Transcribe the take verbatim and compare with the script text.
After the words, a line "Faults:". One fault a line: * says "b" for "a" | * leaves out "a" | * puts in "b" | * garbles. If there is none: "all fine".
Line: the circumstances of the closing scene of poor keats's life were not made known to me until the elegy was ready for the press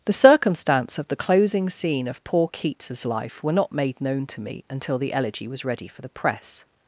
the circumstance of the closing scene of poor keats's life were not made known to me until the elegy was ready for the press
Faults:
* says "circumstance" for "circumstances"